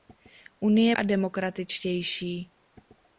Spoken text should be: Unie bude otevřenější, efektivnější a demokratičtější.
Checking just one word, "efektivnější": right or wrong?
wrong